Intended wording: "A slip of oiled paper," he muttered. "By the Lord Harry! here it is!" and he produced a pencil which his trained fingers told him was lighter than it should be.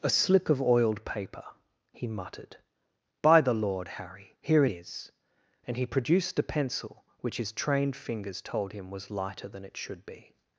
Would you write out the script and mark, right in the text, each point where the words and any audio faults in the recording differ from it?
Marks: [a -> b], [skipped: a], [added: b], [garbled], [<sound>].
"A slip of oiled paper," he muttered. "By the Lord Harry! here it is!" and he produced a pencil which his trained fingers told him was lighter than it should be.